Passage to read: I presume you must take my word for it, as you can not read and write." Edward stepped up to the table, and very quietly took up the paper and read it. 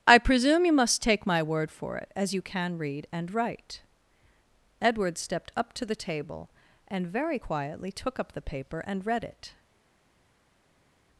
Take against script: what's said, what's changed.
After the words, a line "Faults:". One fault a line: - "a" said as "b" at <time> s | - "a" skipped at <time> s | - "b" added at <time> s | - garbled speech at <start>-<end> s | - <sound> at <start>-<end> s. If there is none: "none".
I presume you must take my word for it, as you can read and write." Edward stepped up to the table, and very quietly took up the paper and read it.
Faults:
- "not" skipped at 2.8 s